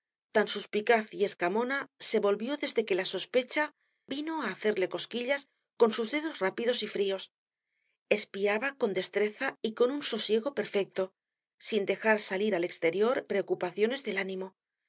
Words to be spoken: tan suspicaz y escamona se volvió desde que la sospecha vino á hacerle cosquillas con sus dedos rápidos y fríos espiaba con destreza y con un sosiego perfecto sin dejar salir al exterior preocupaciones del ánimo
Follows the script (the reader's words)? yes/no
yes